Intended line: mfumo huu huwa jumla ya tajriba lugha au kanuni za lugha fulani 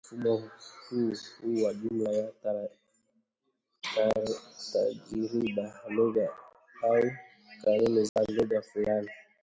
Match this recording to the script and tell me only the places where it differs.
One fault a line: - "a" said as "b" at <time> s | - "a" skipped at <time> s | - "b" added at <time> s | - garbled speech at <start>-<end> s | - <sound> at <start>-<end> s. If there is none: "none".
- dropout at 8.1-8.2 s